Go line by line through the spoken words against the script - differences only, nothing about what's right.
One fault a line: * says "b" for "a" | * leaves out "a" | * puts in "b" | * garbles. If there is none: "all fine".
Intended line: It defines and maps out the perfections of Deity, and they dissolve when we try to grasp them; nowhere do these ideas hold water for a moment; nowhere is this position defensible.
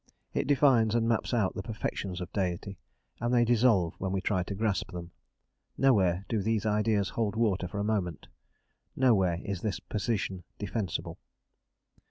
all fine